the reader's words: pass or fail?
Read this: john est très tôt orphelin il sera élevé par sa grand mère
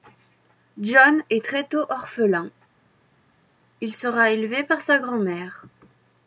pass